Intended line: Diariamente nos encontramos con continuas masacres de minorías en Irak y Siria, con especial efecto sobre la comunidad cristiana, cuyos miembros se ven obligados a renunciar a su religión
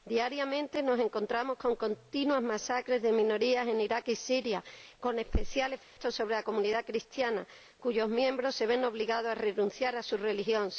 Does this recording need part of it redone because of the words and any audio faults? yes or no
yes